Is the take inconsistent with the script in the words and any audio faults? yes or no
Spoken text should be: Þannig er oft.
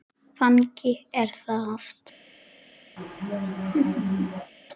yes